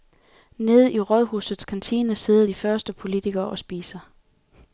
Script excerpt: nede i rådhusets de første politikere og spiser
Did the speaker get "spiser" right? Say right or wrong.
right